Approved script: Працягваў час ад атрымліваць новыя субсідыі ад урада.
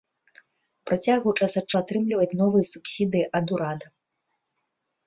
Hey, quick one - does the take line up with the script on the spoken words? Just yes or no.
yes